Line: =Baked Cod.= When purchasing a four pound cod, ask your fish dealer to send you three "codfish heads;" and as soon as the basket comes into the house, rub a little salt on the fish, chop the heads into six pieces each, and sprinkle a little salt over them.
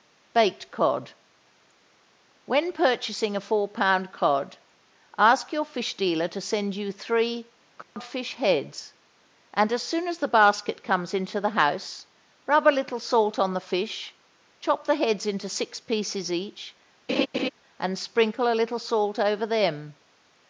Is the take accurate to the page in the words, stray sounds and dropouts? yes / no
no